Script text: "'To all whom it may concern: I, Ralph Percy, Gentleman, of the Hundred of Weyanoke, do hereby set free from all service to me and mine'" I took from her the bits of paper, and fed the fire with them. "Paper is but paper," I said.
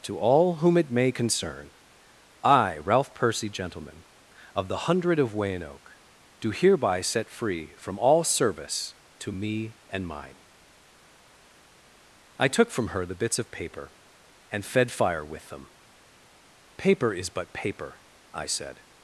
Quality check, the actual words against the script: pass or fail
fail